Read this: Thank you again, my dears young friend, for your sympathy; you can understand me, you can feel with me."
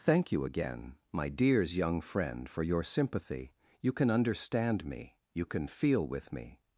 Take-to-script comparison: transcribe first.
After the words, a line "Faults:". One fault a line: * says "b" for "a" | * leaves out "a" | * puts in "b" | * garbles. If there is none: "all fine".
Thank you again, my dears young friend, for your sympathy; you can understand me, you can feel with me."
Faults:
all fine